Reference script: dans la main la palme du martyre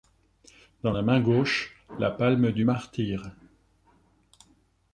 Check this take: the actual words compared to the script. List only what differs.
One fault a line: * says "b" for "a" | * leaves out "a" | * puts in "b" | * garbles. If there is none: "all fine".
* puts in "gauche"